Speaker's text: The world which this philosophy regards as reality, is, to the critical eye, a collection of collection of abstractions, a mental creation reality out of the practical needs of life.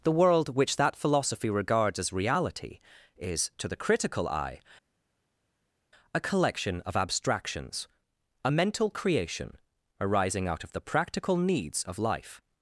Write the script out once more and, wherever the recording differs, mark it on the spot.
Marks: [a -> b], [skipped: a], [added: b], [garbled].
The world which [this -> that] philosophy regards as reality, is, to the critical eye, a collection of [skipped: collection of] abstractions, a mental creation [reality -> arising] out of the practical needs of life.